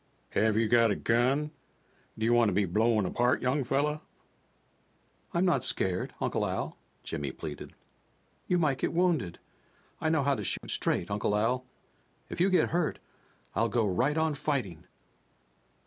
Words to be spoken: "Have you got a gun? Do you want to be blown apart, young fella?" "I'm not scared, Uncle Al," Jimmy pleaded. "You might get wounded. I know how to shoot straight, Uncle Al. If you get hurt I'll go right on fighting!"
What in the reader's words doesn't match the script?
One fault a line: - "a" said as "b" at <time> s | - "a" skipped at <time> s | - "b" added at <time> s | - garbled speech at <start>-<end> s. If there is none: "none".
none